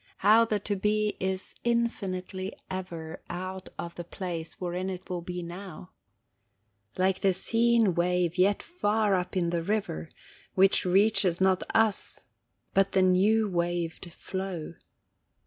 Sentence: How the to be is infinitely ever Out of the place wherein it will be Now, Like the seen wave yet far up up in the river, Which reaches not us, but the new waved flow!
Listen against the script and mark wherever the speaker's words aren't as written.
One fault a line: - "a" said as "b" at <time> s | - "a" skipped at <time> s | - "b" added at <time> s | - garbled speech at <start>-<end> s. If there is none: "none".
- "up" skipped at 9.4 s